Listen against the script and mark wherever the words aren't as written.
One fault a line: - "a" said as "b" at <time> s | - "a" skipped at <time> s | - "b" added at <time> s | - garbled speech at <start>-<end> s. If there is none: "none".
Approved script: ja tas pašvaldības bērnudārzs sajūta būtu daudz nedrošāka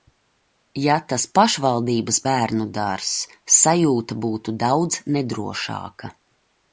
none